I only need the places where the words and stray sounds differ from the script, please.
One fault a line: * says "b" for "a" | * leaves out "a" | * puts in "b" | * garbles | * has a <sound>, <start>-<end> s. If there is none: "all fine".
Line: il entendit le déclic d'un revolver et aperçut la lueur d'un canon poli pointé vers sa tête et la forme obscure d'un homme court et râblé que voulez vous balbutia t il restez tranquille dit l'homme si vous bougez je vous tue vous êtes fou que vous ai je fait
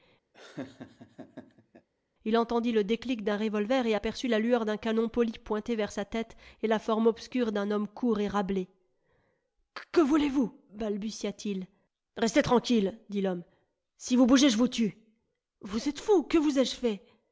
* has a laugh, 0.3-1.9 s